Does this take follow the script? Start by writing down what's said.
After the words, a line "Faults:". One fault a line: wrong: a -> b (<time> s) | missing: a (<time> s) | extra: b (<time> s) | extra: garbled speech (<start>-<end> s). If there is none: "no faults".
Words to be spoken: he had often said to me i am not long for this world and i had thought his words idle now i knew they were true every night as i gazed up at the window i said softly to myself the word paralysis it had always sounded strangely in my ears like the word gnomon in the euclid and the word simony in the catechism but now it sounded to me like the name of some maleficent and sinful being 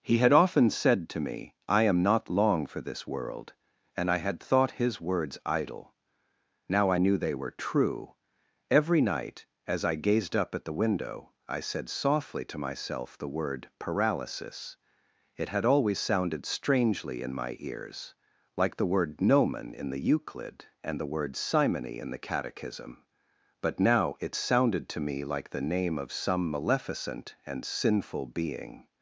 he had often said to me i am not long for this world and i had thought his words idle now i knew they were true every night as i gazed up at the window i said softly to myself the word paralysis it had always sounded strangely in my ears like the word gnomon in the euclid and the word simony in the catechism but now it sounded to me like the name of some maleficent and sinful being
Faults:
no faults